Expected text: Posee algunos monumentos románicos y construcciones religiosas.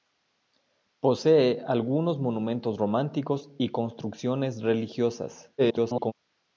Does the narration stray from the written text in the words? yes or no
yes